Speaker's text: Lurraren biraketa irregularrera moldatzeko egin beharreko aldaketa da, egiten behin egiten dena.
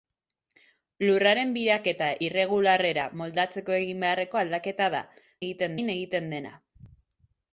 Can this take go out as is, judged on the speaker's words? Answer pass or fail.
pass